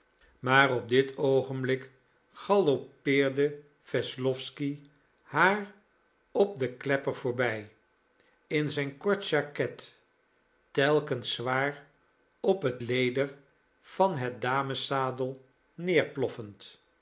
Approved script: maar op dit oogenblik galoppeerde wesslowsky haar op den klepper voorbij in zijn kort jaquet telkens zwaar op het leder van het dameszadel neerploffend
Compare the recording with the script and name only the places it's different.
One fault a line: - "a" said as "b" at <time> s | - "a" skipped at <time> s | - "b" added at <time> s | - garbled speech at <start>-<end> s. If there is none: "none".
none